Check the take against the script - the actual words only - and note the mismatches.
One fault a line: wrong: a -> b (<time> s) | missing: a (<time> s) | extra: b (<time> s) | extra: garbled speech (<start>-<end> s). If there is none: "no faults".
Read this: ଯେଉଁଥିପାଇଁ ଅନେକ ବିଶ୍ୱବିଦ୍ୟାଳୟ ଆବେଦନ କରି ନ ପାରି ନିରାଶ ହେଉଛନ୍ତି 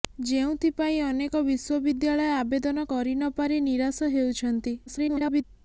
extra: garbled speech (4.9-5.4 s)